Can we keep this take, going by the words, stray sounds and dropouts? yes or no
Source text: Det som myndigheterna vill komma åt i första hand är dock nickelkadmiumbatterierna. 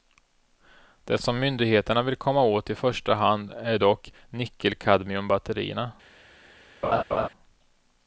no